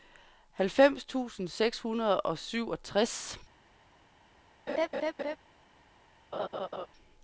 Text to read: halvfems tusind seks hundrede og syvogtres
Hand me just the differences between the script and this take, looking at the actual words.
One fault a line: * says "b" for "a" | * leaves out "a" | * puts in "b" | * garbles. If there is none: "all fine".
all fine